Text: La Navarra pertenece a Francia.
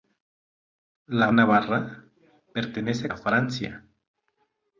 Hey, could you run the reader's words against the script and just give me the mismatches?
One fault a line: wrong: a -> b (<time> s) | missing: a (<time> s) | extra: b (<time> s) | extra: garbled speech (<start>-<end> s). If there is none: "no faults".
no faults